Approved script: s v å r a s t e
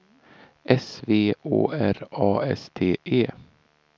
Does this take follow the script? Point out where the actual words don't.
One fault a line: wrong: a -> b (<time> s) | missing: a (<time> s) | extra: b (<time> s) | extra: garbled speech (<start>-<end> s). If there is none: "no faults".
no faults